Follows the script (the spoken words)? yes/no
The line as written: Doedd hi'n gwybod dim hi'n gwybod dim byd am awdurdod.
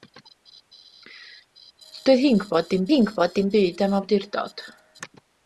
yes